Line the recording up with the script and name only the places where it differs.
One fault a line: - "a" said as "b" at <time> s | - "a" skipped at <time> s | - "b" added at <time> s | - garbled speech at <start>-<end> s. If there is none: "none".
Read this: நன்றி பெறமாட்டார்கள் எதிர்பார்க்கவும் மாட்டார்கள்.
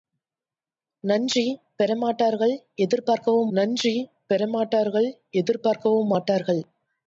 - "நன்றி பெறமாட்டார்கள் எதிர்பார்க்கவும்" added at 3.5 s